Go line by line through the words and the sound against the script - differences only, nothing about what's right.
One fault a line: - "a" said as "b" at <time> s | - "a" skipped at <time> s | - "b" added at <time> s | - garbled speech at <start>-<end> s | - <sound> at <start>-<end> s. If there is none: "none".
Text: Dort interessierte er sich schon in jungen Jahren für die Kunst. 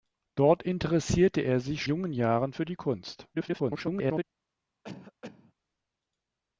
- "schon in" skipped at 1.8 s
- garbled speech at 3.3-4.2 s
- cough at 4.8-5.5 s